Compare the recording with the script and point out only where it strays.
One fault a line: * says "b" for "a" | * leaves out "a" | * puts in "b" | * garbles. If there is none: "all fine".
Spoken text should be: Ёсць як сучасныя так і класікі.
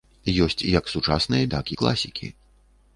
all fine